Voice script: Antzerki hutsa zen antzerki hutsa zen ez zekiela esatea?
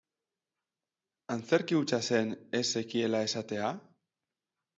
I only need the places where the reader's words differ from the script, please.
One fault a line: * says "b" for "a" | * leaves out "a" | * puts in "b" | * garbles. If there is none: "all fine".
* leaves out "antzerki hutsa zen"